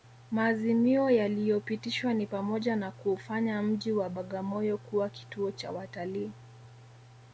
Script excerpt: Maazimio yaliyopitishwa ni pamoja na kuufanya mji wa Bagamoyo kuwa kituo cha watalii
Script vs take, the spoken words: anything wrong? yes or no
no